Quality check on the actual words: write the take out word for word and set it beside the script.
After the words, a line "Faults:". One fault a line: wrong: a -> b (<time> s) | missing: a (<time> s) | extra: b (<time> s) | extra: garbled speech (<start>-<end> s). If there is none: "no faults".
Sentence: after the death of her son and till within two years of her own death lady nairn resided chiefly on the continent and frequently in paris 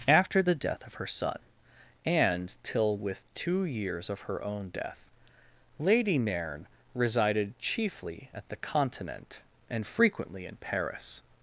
after the death of her son and till with two years of her own death lady nairn resided chiefly at the continent and frequently in paris
Faults:
wrong: within -> with (3.0 s)
wrong: on -> at (8.3 s)